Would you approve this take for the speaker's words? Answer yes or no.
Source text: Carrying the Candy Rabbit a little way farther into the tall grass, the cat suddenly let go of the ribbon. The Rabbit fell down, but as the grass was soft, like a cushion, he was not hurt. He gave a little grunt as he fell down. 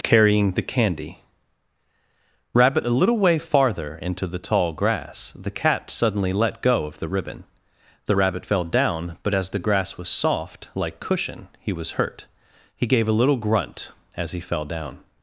no